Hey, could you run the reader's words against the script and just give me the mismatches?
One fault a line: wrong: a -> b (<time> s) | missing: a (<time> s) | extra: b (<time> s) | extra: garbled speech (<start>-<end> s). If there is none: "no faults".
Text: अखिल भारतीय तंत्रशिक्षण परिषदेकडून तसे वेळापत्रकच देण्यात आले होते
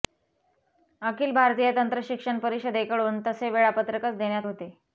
missing: आले (4.5 s)